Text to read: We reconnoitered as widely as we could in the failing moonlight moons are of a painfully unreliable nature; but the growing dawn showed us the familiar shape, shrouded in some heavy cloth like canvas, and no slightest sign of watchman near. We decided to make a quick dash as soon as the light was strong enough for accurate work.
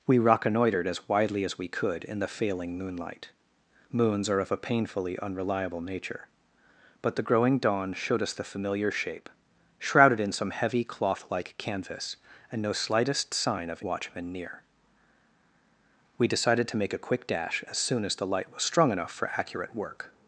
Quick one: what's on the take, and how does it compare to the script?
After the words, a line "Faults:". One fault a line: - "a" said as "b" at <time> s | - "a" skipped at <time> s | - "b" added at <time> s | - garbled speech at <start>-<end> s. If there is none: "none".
We reconnoitered as widely as we could in the failing moonlight moons are of a painfully unreliable nature; but the growing dawn showed us the familiar shape, shrouded in some heavy cloth like canvas, and no slightest sign of watchman near. We decided to make a quick dash as soon as the light was strong enough for accurate work.
Faults:
none